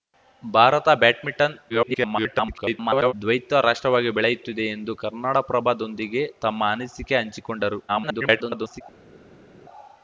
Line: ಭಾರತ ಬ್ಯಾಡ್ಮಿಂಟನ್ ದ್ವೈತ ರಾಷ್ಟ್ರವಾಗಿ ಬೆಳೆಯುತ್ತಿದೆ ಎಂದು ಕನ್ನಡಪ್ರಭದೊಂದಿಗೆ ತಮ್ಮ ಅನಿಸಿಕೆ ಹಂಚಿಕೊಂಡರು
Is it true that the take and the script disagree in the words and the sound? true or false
true